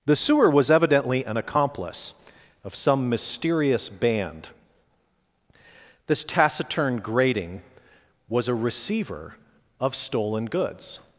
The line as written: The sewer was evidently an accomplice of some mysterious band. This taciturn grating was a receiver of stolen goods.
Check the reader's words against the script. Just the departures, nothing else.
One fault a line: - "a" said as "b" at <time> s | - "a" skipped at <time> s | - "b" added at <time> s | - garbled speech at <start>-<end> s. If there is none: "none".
none